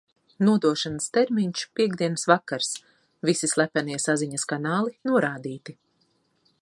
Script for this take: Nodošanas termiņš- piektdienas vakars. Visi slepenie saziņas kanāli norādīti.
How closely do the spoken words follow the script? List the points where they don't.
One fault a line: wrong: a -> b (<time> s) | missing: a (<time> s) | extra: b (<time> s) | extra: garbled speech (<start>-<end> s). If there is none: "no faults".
no faults